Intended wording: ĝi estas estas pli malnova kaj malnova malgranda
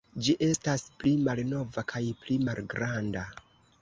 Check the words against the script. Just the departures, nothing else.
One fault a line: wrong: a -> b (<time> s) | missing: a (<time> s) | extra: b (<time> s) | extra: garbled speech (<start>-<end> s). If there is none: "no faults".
missing: estas (0.9 s)
wrong: malnova -> pli (2.2 s)